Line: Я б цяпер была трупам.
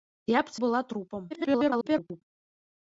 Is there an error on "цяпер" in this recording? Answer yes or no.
yes